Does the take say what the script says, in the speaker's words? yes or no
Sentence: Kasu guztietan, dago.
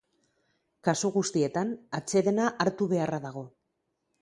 no